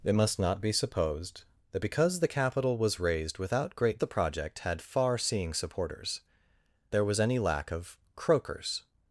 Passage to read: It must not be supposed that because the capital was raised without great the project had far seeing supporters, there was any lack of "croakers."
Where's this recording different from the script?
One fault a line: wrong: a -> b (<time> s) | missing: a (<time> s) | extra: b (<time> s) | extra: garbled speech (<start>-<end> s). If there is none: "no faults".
no faults